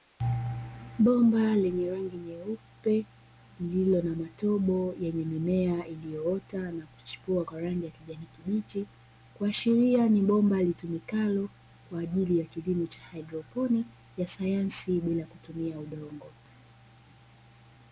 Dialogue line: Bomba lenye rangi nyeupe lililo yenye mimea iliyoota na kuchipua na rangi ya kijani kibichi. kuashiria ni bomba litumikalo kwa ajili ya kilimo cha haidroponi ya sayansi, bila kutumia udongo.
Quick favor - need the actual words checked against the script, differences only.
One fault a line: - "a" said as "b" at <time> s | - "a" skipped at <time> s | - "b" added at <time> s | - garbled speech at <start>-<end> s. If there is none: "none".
- "na matobo" added at 4.0 s
- "na" said as "kwa" at 7.4 s